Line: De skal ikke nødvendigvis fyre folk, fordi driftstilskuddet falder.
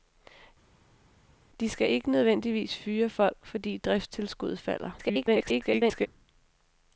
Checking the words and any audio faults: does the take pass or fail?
fail